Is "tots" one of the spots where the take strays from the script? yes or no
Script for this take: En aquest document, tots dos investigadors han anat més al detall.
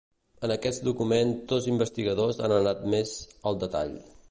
yes